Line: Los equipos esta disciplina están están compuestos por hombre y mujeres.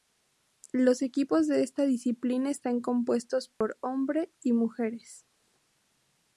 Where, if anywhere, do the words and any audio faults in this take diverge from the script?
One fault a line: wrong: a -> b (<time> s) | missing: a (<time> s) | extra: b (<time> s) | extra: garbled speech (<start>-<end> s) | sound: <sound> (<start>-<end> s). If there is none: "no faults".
extra: de (1.4 s)
missing: están (2.8 s)
sound: dropout (3.5-3.6 s)